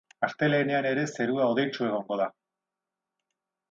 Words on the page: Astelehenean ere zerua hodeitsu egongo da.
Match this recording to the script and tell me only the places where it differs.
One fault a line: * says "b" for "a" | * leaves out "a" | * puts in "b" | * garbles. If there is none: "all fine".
all fine